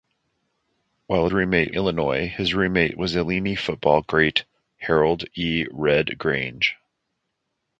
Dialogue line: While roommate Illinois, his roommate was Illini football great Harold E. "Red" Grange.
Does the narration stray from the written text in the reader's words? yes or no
no